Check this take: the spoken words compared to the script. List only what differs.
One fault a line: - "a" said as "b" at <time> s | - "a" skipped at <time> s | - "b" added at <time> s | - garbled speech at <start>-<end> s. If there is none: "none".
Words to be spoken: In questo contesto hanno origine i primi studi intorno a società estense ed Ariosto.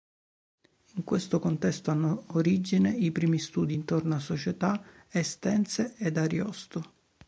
none